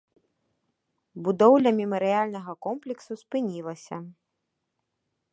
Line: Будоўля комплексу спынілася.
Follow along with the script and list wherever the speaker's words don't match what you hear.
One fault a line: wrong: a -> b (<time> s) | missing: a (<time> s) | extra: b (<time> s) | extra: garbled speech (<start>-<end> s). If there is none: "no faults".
extra: мемарыяльнага (1.8 s)